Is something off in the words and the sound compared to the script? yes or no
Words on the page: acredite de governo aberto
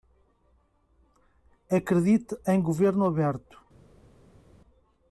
yes